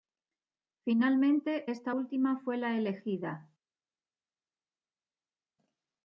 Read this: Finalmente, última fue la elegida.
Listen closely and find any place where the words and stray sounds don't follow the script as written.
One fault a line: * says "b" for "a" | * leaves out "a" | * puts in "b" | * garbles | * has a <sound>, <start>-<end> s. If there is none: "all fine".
* puts in "esta"